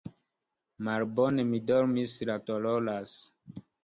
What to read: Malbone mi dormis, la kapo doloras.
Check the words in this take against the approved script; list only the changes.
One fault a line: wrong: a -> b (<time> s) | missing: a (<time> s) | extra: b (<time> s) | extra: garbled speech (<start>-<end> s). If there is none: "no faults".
missing: kapo (2.4 s)